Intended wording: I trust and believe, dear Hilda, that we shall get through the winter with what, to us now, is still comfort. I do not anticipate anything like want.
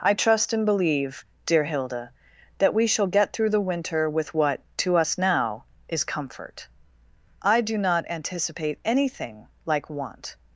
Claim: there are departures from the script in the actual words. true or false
true